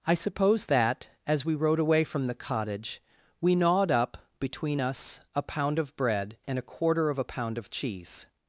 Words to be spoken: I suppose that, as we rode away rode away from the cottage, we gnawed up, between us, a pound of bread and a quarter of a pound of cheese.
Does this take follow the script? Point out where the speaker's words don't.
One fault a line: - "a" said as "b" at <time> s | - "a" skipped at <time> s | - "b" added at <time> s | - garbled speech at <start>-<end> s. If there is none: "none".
- "rode away" skipped at 2.0 s